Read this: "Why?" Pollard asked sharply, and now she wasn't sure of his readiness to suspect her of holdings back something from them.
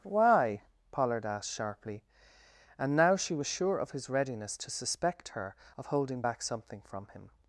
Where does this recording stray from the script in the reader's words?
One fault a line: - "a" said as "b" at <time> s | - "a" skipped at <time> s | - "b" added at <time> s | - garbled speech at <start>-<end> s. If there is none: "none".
- "wasn't" said as "was" at 3.4 s
- "holdings" said as "holding" at 5.9 s
- "them" said as "him" at 7.1 s